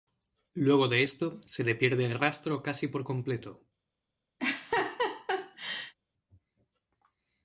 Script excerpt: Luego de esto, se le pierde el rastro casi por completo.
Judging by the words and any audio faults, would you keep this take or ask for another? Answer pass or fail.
fail